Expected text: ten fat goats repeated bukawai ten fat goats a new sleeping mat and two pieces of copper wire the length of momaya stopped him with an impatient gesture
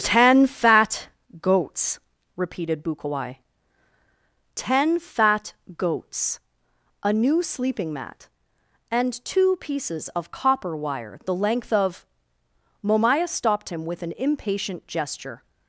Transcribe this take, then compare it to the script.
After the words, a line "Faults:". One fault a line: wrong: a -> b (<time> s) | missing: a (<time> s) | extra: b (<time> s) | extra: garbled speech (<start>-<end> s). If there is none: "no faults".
ten fat goats repeated bukawai ten fat goats a new sleeping mat and two pieces of copper wire the length of momaya stopped him with an impatient gesture
Faults:
no faults